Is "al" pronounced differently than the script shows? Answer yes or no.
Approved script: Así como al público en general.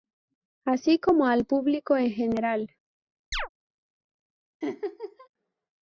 no